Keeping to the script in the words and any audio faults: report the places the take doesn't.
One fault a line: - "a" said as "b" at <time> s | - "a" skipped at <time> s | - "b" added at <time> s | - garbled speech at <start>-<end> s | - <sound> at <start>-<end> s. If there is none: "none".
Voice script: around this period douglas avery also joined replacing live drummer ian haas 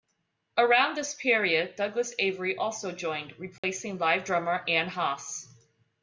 - dropout at 3.6-3.6 s